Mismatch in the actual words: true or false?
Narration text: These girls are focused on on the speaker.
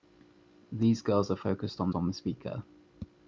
false